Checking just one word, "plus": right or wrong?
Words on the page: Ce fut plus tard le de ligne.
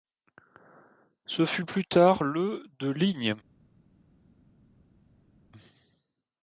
right